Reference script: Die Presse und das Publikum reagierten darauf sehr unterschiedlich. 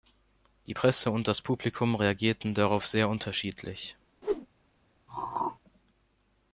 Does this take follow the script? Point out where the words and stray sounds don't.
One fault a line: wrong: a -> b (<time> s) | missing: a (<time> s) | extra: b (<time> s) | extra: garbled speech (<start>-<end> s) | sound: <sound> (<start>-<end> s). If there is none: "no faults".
sound: whoosh (4.2-4.5 s)
sound: throat clearing (5.1-5.6 s)